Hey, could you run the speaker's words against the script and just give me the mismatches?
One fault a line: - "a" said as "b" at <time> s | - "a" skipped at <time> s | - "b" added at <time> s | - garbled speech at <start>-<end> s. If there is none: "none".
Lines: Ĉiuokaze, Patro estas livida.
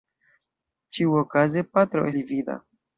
- "estas" skipped at 2.1 s